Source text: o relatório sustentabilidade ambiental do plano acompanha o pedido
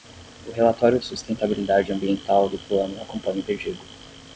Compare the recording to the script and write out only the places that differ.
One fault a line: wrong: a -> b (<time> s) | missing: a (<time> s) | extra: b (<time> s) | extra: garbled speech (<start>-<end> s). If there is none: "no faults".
no faults